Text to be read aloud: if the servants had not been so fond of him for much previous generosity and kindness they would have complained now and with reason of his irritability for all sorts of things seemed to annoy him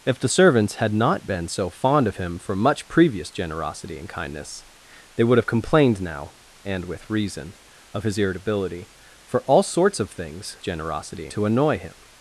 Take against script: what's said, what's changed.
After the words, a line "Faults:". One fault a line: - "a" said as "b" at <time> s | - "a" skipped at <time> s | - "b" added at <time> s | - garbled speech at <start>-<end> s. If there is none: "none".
if the servants had not been so fond of him for much previous generosity and kindness they would have complained now and with reason of his irritability for all sorts of things generosity to annoy him
Faults:
- "seemed" said as "generosity" at 10.6 s